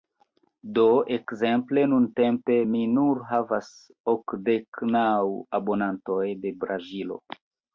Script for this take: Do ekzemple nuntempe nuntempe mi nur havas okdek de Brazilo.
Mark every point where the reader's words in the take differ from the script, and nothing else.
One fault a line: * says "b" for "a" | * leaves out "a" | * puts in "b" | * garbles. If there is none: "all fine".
* leaves out "nuntempe"
* puts in "naŭ abonantoj"